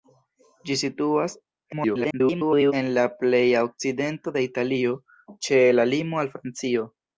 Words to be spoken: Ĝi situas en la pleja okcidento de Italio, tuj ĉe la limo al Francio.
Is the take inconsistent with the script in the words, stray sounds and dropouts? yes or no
yes